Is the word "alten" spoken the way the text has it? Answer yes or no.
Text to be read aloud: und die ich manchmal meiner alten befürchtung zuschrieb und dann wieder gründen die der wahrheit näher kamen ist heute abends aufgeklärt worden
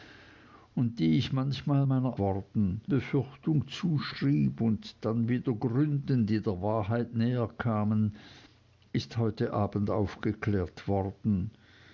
no